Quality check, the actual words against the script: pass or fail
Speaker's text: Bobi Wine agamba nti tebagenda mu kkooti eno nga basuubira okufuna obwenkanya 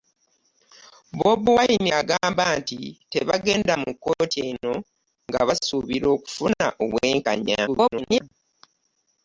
fail